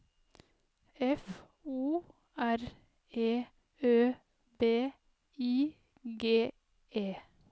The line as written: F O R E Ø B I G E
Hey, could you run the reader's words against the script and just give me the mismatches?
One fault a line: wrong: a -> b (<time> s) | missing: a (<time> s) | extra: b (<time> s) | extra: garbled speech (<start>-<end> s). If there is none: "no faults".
no faults